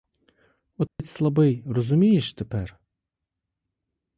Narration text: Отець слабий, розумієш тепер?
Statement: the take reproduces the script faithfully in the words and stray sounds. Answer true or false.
false